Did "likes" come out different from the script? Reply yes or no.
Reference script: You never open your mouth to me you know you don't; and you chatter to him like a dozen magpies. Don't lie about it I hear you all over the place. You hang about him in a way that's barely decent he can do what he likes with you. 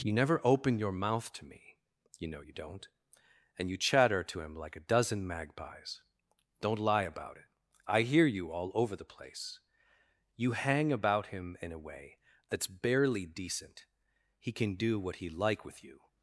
yes